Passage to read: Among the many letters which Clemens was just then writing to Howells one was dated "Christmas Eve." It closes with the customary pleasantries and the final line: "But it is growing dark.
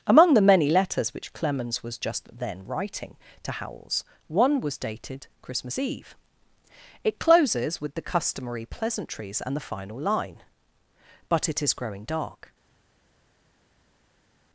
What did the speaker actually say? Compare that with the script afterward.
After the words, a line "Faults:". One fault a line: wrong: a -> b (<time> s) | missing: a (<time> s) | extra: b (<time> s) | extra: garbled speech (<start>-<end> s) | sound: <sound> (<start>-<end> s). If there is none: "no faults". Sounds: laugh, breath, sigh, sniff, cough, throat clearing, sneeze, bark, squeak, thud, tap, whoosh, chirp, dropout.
Among the many letters which Clemens was just then writing to Howells one was dated "Christmas Eve." It closes with the customary pleasantries and the final line: "But it is growing dark.
Faults:
no faults